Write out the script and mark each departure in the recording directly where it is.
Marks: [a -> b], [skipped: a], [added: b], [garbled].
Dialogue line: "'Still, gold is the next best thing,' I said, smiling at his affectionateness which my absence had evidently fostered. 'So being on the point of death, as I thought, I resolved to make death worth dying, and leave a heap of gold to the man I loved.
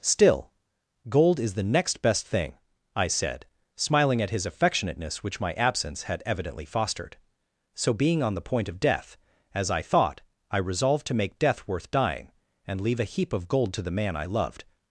"'Still, gold is the next best thing,' I said, smiling at his affectionateness which my absence had evidently fostered. 'So being on the point of death, as I thought, I resolved to make death worth dying, and leave a heap of gold to the man I loved.